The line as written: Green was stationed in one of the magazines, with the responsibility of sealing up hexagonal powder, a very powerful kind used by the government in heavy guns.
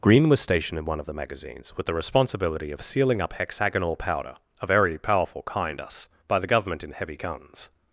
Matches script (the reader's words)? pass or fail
fail